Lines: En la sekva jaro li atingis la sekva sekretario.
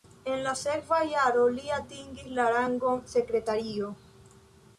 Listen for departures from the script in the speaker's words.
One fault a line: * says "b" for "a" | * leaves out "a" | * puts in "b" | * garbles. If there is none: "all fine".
* says "rangon" for "sekva"